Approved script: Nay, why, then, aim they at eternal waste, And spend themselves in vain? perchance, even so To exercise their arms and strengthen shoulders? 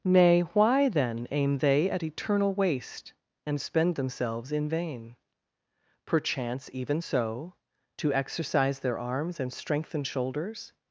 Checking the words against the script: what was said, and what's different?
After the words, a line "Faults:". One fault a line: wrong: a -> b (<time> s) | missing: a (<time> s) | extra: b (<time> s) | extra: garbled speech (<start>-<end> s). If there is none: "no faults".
Nay, why, then, aim they at eternal waste, And spend themselves in vain? perchance, even so To exercise their arms and strengthen shoulders?
Faults:
no faults